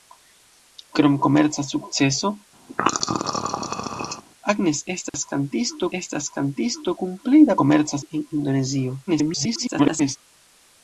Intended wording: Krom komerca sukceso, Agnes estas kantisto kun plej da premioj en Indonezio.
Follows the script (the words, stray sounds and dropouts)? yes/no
no